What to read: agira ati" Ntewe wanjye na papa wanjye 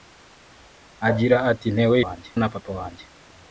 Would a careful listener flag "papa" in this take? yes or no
no